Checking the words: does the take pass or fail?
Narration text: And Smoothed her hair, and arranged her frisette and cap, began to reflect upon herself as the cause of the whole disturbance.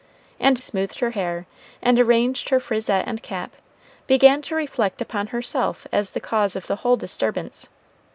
pass